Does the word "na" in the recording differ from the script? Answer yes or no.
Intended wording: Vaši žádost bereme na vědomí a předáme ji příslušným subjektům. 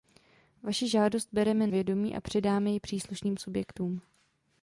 yes